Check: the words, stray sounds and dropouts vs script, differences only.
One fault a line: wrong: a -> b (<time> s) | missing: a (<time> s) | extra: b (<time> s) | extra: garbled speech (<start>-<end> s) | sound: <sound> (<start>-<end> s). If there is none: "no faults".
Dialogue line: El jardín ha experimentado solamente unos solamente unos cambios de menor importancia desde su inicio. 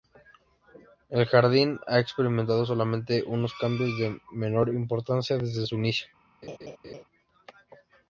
missing: solamente unos (3.5 s)
sound: laugh (6.4-7.0 s)